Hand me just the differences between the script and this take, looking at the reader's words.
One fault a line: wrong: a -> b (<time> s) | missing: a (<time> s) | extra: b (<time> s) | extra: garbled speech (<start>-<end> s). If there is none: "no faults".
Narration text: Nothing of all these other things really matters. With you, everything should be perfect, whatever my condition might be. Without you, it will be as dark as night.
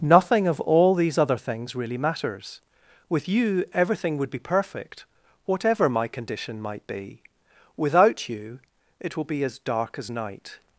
wrong: should -> would (4.2 s)